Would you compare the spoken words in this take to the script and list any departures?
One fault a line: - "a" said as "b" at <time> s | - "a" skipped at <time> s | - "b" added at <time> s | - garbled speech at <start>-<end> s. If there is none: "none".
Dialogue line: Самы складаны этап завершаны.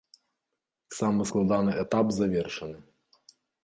none